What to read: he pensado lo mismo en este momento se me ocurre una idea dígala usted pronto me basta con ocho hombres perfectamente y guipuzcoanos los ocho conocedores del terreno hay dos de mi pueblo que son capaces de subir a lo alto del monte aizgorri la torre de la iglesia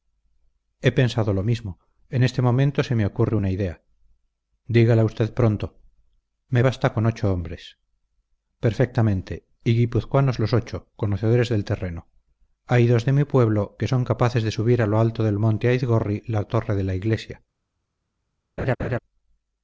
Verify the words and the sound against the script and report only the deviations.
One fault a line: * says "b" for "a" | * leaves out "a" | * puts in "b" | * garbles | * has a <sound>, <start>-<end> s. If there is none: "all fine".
* has a laugh, 18.6-19.0 s